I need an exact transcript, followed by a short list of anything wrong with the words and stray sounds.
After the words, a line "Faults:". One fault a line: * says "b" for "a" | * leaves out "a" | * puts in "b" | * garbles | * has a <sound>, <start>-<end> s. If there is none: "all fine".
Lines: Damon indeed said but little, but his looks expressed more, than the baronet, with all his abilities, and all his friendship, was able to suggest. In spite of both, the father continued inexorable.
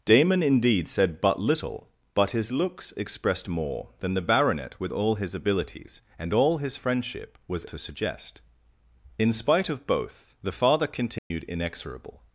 Damon indeed said but little, but his looks expressed more, than the baronet, with all his abilities, and all his friendship, was to suggest. In spite of both, the father continued inexorable.
Faults:
* leaves out "able"
* has a dropout, 11.2-11.3 s